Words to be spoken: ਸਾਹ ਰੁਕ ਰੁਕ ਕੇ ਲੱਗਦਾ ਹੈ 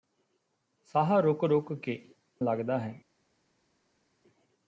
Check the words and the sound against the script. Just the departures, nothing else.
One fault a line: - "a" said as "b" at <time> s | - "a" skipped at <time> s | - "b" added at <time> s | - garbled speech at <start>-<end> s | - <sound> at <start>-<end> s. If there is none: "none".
none